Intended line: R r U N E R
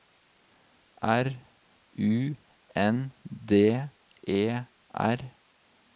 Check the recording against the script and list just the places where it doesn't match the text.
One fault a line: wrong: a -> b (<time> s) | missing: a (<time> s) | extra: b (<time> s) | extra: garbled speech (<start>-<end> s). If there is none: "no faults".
missing: r (1.3 s)
extra: D (3.3 s)